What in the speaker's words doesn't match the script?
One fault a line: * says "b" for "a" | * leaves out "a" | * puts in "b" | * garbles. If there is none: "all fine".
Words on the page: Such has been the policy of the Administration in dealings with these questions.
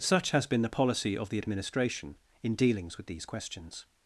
all fine